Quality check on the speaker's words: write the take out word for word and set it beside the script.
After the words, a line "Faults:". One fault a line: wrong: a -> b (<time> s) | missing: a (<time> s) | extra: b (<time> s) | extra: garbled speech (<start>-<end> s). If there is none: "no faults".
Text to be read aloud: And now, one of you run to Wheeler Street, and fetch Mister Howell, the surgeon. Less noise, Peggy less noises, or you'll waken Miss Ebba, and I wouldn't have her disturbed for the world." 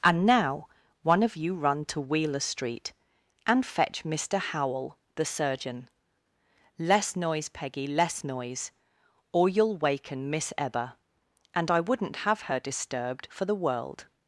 And now, one of you run to Wheeler Street, and fetch Mister Howell, the surgeon. Less noise, Peggy less noise, or you'll waken Miss Ebba, and I wouldn't have her disturbed for the world."
Faults:
wrong: noises -> noise (8.2 s)